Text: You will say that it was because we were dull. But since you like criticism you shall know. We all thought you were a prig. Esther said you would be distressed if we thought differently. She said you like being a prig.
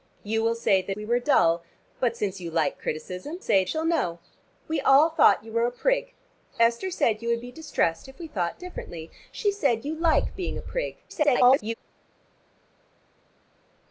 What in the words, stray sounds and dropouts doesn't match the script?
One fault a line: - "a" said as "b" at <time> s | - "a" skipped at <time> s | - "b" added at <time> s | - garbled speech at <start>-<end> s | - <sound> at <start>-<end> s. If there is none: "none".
- "it was because" skipped at 1.0 s
- "you" said as "say" at 3.4 s
- garbled speech at 11.1-11.7 s